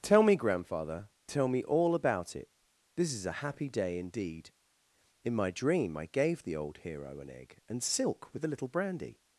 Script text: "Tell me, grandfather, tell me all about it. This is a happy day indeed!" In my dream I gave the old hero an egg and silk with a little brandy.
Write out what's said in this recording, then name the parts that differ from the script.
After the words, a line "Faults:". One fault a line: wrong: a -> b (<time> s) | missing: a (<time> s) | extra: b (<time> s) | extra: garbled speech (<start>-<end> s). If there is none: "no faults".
"Tell me, grandfather, tell me all about it. This is a happy day indeed!" In my dream I gave the old hero an egg and silk with a little brandy.
Faults:
no faults